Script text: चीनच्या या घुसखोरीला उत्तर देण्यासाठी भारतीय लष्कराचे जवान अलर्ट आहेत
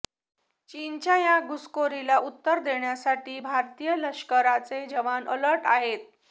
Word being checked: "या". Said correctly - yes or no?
yes